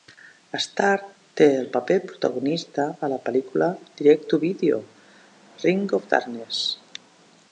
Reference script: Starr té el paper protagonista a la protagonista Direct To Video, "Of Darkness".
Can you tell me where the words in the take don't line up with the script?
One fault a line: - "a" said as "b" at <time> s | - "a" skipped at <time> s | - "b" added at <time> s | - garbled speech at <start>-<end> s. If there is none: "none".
- "protagonista" said as "pel·lícula" at 3.3 s
- "Ring" added at 5.7 s